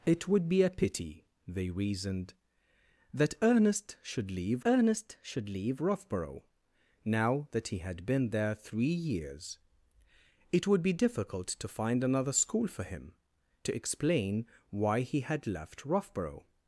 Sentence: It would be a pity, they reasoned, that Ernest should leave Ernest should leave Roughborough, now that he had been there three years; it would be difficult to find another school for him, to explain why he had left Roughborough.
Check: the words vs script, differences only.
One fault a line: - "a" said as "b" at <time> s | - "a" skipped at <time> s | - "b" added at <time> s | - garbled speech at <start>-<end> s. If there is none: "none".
none